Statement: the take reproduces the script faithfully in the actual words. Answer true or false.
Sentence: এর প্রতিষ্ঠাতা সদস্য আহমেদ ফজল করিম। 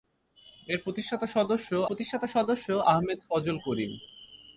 false